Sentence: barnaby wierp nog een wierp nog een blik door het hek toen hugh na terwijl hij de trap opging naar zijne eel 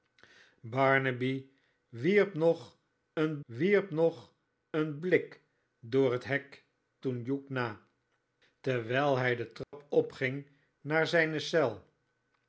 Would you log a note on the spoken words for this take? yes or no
no